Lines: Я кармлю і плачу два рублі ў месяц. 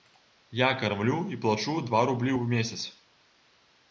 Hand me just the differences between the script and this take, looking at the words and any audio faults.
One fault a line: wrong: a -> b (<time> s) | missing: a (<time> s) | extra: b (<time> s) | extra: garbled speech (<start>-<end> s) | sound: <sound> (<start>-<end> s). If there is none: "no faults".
no faults